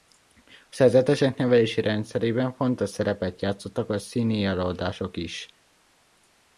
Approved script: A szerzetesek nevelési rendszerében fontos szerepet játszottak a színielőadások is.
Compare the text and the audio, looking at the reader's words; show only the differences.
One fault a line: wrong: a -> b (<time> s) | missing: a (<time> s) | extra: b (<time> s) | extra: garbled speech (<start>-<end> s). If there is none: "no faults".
no faults